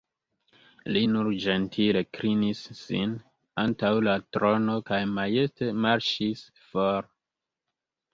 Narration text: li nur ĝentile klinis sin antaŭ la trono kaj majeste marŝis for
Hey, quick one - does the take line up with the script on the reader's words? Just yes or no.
yes